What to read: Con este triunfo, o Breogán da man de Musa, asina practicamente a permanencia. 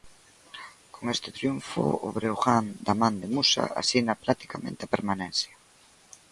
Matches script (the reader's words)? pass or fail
pass